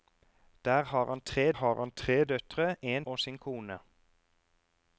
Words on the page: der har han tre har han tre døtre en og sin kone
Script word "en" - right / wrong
right